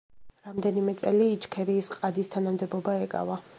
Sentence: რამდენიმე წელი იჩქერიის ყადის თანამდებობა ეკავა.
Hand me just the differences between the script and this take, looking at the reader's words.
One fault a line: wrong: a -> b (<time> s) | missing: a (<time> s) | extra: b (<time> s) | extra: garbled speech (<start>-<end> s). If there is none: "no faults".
no faults